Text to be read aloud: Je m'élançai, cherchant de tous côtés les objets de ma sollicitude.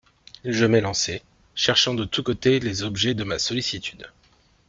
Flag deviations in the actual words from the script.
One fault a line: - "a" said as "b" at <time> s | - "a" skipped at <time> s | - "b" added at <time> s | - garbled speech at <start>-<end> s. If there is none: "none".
none